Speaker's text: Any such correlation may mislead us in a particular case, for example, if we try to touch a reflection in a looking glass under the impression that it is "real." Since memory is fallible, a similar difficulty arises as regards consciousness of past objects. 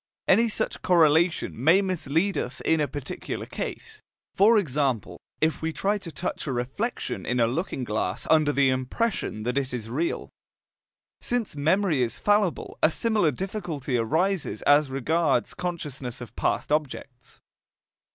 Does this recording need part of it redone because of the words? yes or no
no